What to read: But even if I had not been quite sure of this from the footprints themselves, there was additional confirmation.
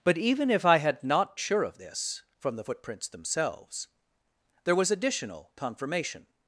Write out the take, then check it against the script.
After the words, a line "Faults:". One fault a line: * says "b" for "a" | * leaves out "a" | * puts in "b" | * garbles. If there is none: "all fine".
But even if I had not sure of this from the footprints themselves, there was additional confirmation.
Faults:
* leaves out "been quite"